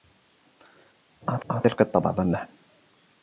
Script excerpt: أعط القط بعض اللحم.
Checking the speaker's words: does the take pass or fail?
fail